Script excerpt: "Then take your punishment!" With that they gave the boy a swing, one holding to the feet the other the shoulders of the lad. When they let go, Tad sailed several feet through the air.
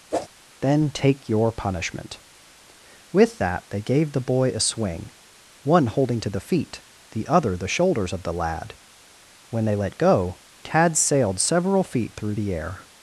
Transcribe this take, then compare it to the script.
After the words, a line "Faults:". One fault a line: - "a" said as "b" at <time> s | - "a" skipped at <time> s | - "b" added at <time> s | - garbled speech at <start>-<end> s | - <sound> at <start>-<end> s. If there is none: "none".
"Then take your punishment!" With that they gave the boy a swing, one holding to the feet the other the shoulders of the lad. When they let go, Tad sailed several feet through the air.
Faults:
- whoosh at 0.1-0.3 s